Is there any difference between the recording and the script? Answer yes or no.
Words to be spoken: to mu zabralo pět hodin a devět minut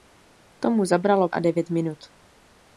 yes